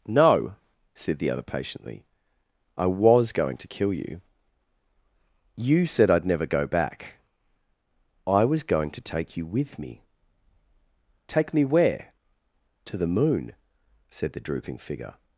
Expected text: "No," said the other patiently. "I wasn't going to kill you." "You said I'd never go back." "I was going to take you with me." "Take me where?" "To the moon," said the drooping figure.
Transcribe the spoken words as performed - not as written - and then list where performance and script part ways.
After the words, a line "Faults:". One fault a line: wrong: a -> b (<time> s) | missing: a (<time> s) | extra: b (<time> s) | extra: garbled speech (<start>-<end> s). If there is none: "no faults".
"No," said the other patiently. "I was going to kill you." "You said I'd never go back." "I was going to take you with me." "Take me where?" "To the moon," said the drooping figure.
Faults:
wrong: wasn't -> was (2.9 s)